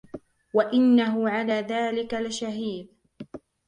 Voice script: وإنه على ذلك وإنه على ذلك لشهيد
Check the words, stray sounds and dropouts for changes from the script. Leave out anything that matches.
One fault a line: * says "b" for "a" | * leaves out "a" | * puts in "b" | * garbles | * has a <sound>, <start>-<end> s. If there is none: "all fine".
* leaves out "وإنه على ذلك"